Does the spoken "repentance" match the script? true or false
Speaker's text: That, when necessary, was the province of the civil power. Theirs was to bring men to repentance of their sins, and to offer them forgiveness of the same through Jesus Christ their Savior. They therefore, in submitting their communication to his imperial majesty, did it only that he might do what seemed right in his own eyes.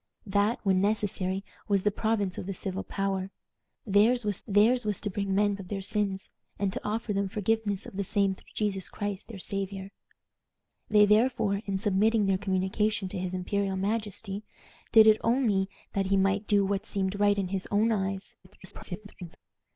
false